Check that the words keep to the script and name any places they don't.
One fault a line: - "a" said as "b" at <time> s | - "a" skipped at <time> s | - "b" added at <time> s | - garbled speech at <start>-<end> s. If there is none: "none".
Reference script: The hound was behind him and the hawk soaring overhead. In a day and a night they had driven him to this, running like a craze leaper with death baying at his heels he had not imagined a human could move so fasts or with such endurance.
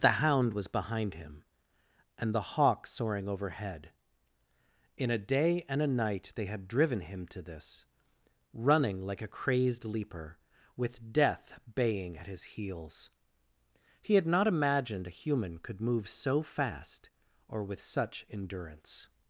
- "craze" said as "crazed" at 9.3 s
- "fasts" said as "fast" at 16.4 s